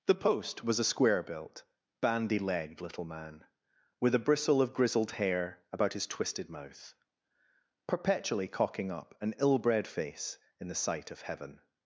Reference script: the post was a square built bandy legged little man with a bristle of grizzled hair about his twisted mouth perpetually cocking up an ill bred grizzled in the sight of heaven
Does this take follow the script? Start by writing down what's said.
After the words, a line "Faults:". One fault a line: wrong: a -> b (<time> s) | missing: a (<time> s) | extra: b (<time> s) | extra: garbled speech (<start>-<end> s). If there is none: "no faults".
the post was a square built bandy legged little man with a bristle of grizzled hair about his twisted mouth perpetually cocking up an ill bred face in the sight of heaven
Faults:
wrong: grizzled -> face (9.9 s)